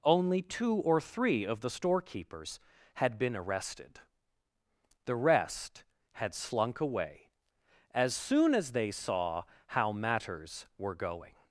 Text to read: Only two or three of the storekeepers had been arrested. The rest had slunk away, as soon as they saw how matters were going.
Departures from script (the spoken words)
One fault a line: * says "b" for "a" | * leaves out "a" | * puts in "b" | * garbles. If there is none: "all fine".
all fine